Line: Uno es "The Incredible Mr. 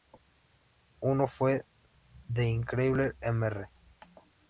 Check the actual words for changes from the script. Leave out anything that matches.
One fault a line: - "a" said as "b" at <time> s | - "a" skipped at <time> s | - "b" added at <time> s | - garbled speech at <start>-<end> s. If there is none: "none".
- "es" said as "fue" at 1.3 s